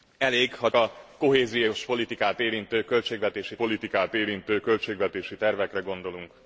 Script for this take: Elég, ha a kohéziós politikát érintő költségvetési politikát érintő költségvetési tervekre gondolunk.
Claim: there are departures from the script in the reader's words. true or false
false